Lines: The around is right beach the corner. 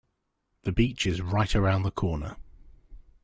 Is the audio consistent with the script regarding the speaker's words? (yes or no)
no